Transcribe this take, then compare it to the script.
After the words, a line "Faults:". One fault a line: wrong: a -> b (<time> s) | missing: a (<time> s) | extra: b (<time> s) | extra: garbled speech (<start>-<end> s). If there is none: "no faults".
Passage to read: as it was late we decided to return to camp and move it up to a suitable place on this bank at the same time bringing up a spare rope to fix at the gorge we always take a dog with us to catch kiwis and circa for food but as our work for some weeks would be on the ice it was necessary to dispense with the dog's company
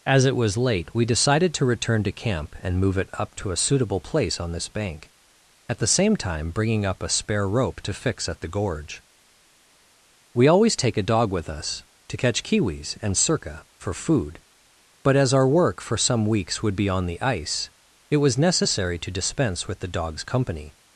as it was late we decided to return to camp and move it up to a suitable place on this bank at the same time bringing up a spare rope to fix at the gorge we always take a dog with us to catch kiwis and circa for food but as our work for some weeks would be on the ice it was necessary to dispense with the dog's company
Faults:
no faults